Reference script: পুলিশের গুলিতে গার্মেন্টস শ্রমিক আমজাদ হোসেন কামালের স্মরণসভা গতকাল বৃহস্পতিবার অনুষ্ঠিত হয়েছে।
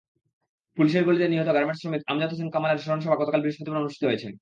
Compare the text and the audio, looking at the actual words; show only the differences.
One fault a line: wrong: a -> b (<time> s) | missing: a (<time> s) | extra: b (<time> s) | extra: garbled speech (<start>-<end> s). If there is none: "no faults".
extra: নিহত (1.3 s)